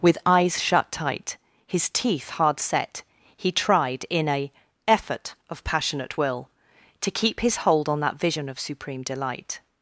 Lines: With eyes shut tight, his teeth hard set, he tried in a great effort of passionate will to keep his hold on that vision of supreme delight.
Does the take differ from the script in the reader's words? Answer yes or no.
yes